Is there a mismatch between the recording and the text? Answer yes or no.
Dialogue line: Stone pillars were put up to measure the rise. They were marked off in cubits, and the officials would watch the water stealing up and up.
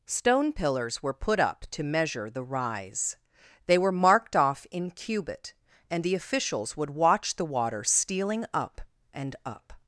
yes